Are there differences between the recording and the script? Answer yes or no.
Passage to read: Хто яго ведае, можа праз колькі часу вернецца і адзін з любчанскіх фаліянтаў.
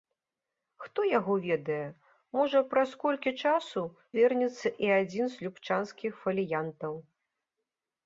no